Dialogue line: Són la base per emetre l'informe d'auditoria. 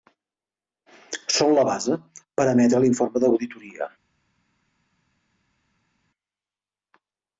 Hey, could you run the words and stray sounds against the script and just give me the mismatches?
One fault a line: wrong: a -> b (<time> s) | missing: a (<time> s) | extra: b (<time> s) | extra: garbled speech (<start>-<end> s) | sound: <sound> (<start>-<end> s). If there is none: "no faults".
no faults